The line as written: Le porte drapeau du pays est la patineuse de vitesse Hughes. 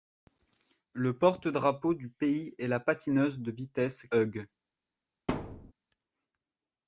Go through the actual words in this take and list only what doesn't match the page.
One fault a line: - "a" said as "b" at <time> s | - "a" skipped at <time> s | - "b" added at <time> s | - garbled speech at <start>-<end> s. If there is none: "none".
none